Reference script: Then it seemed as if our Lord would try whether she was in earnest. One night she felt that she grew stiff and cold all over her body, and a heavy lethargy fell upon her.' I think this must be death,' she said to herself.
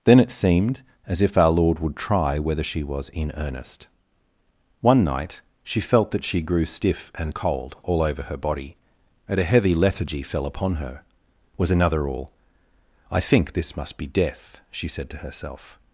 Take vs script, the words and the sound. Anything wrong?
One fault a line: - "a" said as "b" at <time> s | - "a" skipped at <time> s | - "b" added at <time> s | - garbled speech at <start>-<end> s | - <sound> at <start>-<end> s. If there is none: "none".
- "was another all" added at 11.6 s